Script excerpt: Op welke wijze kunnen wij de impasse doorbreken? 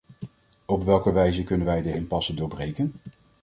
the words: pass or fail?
pass